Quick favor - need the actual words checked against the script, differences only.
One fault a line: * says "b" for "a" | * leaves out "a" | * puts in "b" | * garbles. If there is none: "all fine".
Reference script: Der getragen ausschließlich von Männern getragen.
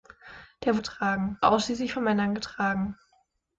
all fine